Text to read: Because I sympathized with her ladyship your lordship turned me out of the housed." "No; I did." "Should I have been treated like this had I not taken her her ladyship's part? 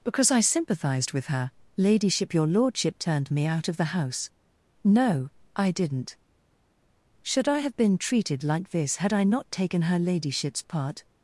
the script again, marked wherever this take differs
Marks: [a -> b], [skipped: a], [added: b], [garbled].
Because I sympathized with her ladyship your lordship turned me out of the [housed." -> house] "No; I [did." -> didn't] "Should I have been treated like this had I not taken her [skipped: her] ladyship's part?